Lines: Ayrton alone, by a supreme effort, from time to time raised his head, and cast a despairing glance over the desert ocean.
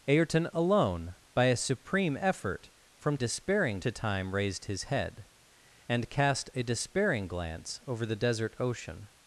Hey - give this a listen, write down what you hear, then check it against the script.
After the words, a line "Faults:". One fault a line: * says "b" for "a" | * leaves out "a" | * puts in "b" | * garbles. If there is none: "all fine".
Ayrton alone, by a supreme effort, from despairing to time raised his head, and cast a despairing glance over the desert ocean.
Faults:
* says "despairing" for "time"